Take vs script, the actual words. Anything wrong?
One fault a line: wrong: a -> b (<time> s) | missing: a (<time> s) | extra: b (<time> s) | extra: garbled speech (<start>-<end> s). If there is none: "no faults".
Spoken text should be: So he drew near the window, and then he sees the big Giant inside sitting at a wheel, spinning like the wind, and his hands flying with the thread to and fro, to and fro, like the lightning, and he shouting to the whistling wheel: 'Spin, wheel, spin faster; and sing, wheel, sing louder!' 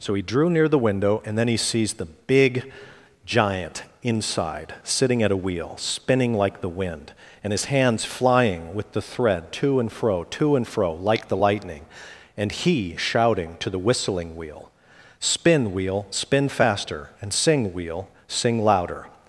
no faults